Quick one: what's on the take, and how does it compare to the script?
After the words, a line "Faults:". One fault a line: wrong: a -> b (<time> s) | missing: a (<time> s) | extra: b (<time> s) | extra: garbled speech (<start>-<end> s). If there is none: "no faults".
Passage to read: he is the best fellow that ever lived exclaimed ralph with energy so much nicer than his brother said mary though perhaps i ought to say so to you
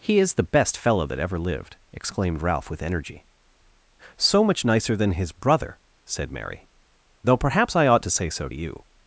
he is the best fellow that ever lived exclaimed ralph with energy so much nicer than his brother said mary though perhaps i ought to say so to you
Faults:
no faults